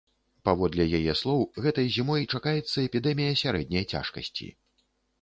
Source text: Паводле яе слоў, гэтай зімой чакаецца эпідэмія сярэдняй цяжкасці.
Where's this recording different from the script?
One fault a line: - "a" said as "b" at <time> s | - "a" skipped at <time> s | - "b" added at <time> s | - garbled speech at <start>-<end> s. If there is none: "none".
none